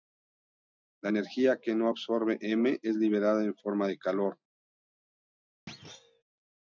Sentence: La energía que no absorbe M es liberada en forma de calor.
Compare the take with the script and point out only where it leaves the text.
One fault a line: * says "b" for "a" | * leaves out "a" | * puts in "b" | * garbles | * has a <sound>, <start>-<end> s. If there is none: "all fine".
* has a thud, 5.7-6.2 s